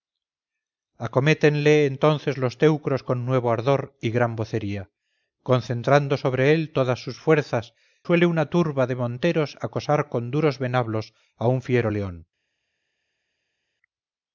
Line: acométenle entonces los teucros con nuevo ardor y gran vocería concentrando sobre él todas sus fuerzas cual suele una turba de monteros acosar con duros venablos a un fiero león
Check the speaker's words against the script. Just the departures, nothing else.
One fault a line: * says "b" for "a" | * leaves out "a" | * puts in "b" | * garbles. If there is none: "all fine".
* leaves out "cual"